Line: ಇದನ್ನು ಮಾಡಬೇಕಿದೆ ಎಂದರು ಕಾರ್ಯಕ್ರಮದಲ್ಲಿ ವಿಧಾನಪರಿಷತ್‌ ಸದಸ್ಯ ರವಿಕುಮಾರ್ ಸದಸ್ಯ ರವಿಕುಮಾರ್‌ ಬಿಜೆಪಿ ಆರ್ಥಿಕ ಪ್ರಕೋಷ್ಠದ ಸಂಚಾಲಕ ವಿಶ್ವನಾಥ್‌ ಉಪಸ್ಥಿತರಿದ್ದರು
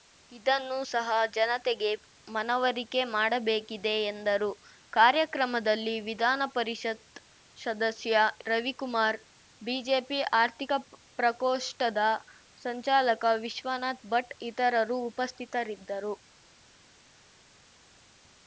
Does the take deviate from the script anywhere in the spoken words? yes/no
yes